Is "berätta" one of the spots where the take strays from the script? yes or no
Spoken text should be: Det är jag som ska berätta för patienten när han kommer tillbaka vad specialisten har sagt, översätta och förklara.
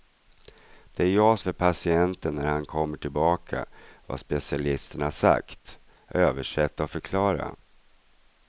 yes